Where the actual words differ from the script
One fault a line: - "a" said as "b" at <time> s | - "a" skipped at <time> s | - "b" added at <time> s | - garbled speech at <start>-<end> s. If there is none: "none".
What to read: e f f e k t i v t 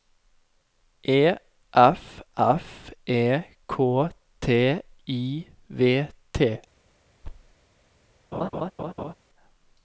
none